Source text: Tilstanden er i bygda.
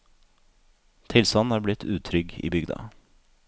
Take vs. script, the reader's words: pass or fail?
fail